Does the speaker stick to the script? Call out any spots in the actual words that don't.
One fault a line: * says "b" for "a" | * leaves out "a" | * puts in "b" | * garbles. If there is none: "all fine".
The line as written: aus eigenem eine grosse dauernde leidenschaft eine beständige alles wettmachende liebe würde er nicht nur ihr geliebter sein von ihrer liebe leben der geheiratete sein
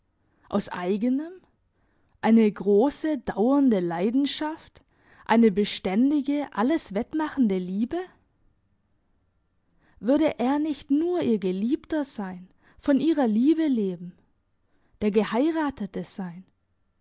all fine